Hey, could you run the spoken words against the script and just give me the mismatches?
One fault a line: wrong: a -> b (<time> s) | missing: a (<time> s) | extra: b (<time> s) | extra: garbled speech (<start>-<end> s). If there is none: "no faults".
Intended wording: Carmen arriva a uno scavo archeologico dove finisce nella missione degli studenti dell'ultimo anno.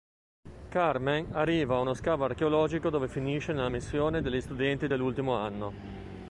no faults